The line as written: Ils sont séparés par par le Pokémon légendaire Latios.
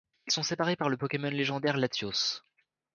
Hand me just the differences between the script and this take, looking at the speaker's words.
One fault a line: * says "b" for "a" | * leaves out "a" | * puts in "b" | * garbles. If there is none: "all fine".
* leaves out "par"